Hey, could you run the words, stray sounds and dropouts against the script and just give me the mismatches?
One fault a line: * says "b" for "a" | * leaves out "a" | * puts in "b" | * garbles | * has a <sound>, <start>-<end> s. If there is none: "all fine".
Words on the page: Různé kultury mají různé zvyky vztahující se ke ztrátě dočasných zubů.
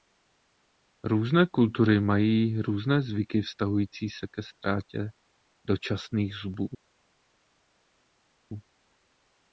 all fine